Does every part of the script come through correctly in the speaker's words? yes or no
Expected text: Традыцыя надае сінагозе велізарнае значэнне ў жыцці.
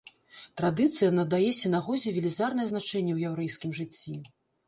no